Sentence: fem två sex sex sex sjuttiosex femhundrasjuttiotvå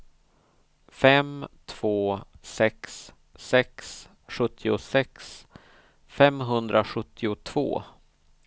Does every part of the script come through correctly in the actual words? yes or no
no